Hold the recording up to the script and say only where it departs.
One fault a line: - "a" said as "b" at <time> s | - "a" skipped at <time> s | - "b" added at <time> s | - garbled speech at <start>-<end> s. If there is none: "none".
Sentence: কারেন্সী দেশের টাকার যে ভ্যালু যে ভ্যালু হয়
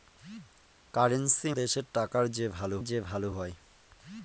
none